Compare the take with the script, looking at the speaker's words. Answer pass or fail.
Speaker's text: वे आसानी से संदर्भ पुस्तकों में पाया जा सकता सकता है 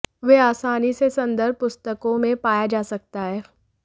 fail